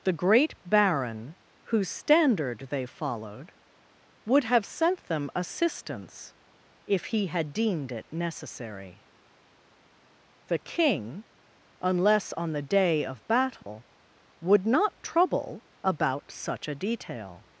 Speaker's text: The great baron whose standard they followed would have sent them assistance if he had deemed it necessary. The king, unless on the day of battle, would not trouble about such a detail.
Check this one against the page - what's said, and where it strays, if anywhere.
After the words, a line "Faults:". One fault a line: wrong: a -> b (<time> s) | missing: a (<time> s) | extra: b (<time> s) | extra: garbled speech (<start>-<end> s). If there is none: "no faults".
The great baron whose standard they followed would have sent them assistance if he had deemed it necessary. The king, unless on the day of battle, would not trouble about such a detail.
Faults:
no faults